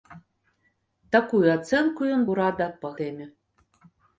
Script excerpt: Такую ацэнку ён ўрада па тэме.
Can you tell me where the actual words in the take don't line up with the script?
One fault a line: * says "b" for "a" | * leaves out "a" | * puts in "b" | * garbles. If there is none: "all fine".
all fine